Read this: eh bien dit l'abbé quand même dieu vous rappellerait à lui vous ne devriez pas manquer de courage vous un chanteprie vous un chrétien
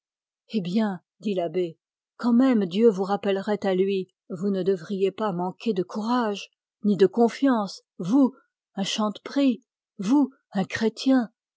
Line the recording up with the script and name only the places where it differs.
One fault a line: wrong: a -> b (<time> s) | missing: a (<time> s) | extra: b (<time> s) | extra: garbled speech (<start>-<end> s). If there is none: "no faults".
extra: ni de confiance (6.8 s)